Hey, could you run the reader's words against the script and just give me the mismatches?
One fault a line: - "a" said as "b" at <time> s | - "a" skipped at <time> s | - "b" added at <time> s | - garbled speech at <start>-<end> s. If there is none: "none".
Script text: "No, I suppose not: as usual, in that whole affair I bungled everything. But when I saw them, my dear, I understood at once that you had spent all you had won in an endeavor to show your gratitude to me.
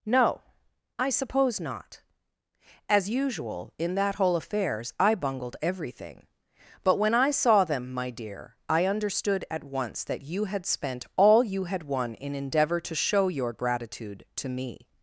- "affair" said as "affairs" at 4.3 s
- "an" skipped at 12.3 s